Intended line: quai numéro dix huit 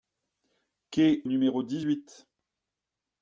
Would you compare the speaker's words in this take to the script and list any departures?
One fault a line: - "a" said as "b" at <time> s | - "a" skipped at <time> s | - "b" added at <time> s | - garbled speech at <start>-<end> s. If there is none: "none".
none